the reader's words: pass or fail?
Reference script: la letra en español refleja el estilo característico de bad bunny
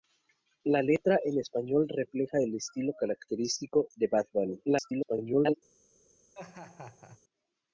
fail